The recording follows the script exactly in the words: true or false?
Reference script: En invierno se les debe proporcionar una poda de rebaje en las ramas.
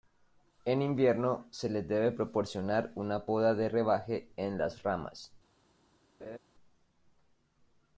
true